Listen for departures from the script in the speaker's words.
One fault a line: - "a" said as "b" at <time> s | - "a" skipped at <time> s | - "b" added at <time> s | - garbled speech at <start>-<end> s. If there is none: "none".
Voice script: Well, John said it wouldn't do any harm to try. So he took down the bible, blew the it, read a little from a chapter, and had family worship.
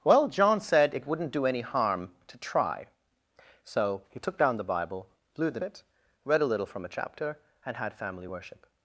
none